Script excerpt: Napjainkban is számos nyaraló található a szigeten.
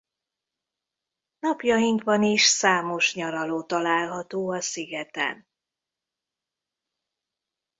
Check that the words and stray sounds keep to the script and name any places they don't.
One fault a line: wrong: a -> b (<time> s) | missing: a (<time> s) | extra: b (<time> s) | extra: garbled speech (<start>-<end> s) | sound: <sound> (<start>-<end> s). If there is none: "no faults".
no faults